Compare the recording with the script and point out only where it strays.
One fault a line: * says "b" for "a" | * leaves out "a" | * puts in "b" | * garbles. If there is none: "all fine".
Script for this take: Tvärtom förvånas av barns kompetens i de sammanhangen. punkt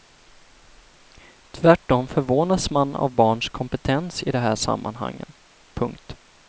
* puts in "man"
* puts in "här"